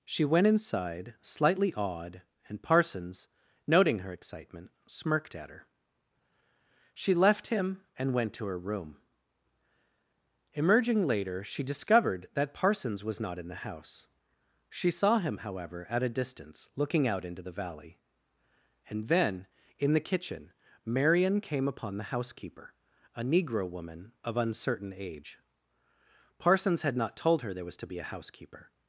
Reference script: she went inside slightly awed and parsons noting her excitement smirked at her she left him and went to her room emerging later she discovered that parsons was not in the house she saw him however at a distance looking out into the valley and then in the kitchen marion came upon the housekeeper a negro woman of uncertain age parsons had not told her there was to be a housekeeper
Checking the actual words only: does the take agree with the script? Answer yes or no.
yes